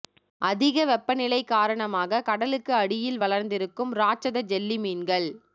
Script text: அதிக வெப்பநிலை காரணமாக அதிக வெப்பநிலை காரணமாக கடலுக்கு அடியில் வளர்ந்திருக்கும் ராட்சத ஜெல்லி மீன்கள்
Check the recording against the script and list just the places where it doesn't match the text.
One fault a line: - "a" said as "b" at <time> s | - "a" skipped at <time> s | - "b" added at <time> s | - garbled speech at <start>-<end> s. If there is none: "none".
- "அதிக வெப்பநிலை காரணமாக" skipped at 2.2 s